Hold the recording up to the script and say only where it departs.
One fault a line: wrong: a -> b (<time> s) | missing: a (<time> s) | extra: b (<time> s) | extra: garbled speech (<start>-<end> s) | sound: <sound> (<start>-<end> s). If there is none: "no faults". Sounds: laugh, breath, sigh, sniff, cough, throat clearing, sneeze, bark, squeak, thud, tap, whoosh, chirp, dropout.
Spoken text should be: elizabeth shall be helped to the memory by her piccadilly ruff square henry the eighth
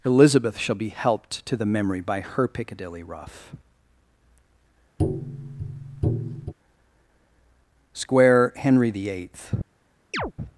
sound: tap (5.0-6.5 s)
sound: chirp (10.1-10.3 s)